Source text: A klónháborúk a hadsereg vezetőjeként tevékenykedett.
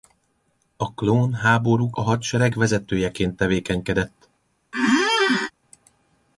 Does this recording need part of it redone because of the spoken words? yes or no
no